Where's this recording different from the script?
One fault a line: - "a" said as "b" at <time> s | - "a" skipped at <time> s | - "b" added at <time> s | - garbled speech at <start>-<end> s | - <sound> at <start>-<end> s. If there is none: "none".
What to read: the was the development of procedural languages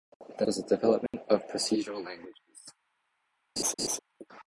- dropout at 1.1-1.1 s
- laugh at 3.6-4.0 s